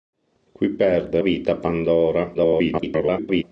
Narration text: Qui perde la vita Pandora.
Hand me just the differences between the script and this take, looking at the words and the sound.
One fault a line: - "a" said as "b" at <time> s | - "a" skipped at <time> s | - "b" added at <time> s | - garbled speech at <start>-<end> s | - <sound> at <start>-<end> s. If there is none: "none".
- "la" skipped at 1.2 s
- garbled speech at 2.3-3.4 s